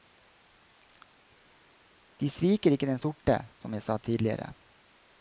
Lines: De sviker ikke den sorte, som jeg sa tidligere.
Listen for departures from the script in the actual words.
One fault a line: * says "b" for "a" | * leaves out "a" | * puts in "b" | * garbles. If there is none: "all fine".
all fine